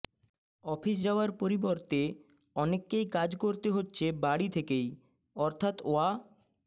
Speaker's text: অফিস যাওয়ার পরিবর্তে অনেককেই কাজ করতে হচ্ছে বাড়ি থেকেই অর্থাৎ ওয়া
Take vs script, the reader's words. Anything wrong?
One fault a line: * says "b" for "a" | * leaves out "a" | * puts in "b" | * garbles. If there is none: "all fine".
all fine